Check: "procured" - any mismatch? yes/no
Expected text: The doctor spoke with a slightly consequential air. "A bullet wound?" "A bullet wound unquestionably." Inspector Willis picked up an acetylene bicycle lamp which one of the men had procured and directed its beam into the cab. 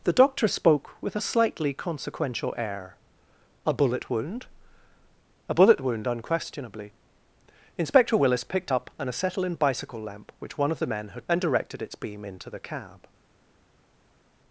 yes